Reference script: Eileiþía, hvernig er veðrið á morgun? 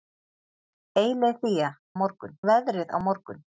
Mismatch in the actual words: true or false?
true